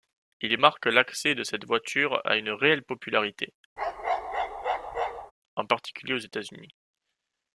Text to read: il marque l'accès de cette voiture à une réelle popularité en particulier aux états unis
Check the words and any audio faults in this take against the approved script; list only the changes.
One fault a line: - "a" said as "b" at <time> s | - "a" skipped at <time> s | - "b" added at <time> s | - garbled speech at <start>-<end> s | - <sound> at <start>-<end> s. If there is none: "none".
- bark at 3.8-5.3 s